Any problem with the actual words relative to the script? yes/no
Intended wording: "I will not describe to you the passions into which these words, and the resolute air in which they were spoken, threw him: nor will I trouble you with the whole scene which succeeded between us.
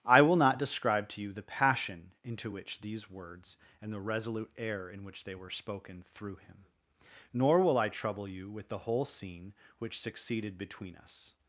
yes